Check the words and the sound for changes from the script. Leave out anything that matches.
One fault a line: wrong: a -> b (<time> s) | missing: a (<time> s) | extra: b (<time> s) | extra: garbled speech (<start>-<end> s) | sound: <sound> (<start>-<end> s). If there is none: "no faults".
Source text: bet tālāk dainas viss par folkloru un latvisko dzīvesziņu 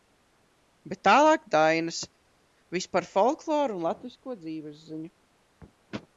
no faults